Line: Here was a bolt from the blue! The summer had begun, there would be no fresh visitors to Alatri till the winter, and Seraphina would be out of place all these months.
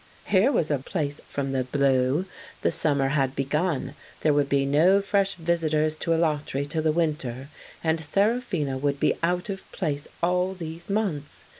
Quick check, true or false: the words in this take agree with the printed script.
false